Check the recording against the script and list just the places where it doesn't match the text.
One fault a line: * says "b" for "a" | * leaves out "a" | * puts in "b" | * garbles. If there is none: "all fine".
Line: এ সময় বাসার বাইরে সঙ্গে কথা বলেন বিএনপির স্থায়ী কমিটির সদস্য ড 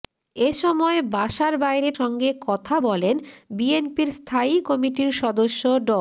all fine